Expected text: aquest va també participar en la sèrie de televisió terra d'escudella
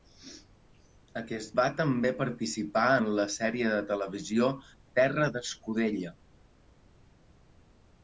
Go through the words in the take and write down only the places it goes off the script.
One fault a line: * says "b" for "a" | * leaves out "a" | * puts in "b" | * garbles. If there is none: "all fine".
all fine